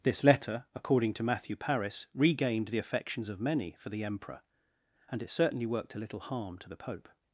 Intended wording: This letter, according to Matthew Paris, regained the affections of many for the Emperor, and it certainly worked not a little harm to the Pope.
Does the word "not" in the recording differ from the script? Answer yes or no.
yes